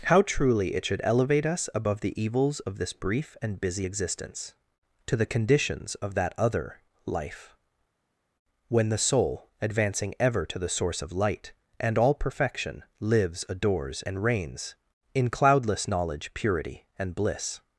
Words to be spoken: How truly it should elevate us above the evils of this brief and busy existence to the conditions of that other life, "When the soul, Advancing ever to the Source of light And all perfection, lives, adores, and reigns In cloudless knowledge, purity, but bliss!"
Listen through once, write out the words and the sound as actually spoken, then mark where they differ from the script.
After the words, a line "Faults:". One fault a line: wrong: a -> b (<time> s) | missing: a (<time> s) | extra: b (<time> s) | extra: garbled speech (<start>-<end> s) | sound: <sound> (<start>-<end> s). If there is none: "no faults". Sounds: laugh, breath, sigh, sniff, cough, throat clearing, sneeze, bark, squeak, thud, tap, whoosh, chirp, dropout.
How truly it should elevate us above the evils of this brief and busy existence to the conditions of that other life, "When the soul, Advancing ever to the Source of light And all perfection, lives, adores, and reigns In cloudless knowledge, purity, and bliss!"
Faults:
wrong: but -> and (17.0 s)